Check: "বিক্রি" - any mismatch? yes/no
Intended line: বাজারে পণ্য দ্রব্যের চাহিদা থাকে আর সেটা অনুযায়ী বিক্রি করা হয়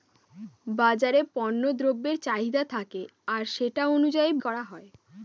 yes